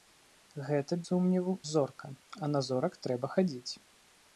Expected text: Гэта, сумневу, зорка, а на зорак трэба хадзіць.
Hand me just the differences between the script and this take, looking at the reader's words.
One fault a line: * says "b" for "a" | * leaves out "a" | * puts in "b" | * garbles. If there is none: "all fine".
all fine